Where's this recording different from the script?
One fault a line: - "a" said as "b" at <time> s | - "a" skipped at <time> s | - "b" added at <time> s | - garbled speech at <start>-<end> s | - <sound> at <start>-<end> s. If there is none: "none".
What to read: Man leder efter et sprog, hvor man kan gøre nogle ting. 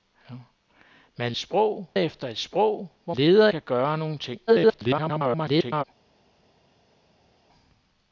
- "leder" said as "sprog" at 1.4 s
- "man" said as "leder" at 3.1 s
- garbled speech at 4.5-5.8 s